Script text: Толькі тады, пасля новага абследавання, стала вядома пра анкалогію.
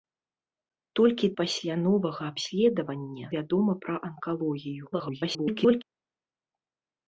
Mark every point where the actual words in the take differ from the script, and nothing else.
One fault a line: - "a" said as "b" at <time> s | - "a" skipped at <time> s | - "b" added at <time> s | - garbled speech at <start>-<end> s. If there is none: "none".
- "тады" skipped at 1.3 s
- "стала" skipped at 3.3 s
- garbled speech at 4.9-5.8 s